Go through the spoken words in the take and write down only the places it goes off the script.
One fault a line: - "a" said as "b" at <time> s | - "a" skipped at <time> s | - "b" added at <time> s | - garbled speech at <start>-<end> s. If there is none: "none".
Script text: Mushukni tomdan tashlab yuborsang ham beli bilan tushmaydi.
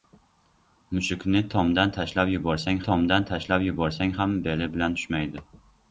- "tomdan tashlab yuborsang" added at 2.9 s